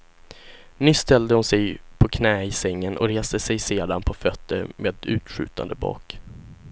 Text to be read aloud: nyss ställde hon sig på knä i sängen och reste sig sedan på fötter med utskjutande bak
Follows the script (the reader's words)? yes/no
yes